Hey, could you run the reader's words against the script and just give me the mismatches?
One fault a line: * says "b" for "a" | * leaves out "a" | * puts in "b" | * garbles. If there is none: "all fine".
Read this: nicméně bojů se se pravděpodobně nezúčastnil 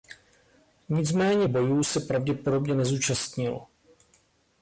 * leaves out "se"